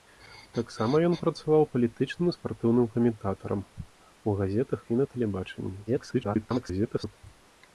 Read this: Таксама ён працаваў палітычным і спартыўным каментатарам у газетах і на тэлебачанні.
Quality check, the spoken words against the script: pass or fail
fail